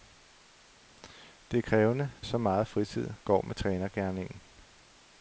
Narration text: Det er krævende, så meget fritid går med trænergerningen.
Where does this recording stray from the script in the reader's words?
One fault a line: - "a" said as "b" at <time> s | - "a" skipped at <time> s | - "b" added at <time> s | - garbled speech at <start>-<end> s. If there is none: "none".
none